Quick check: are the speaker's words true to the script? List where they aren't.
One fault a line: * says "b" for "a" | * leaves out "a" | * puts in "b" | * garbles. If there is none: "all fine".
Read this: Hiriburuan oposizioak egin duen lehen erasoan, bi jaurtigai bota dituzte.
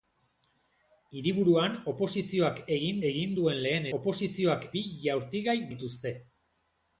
* puts in "egin"
* says "oposizioak" for "erasoan"
* leaves out "bota"